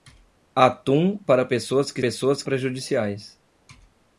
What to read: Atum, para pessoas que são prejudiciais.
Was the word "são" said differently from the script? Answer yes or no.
yes